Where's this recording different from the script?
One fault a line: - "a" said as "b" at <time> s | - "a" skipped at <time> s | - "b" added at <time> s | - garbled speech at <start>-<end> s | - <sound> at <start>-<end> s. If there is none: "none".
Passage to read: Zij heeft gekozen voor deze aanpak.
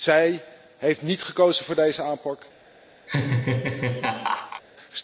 - "niet" added at 1.0 s
- laugh at 3.1-4.6 s